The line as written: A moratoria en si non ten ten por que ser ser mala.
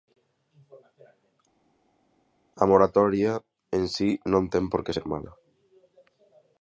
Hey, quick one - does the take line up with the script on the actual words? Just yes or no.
no